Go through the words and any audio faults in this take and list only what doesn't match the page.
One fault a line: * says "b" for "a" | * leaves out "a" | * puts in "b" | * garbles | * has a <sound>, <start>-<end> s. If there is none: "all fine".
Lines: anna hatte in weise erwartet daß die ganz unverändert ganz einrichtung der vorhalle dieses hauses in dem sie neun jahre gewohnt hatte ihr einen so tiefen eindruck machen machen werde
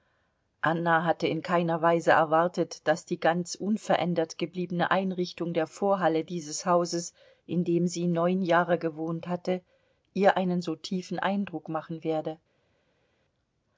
* puts in "keiner"
* says "gebliebene" for "ganz"
* leaves out "machen"